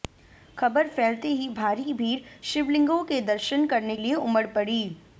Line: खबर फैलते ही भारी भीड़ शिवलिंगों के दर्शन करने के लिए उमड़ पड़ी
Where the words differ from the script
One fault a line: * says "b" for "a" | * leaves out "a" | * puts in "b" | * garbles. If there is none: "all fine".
* leaves out "के"